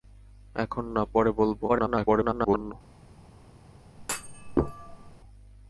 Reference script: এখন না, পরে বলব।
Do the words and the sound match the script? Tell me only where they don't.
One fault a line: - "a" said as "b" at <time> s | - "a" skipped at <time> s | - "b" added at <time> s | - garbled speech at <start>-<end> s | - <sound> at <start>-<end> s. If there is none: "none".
- garbled speech at 1.7-2.7 s
- thud at 4.0-5.2 s